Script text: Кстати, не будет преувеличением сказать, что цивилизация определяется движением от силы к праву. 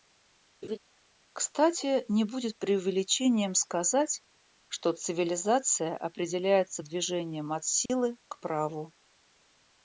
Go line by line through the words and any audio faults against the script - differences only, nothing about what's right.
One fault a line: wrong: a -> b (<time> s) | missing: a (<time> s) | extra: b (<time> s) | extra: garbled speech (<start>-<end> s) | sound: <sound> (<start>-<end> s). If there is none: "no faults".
sound: laugh (0.6-0.8 s)
sound: dropout (7.9-7.9 s)